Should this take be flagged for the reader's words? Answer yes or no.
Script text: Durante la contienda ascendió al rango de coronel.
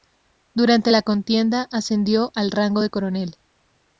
no